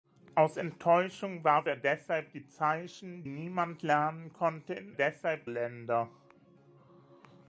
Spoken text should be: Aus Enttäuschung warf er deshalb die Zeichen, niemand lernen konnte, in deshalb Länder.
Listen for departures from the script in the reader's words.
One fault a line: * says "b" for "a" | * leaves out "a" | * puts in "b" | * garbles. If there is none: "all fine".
all fine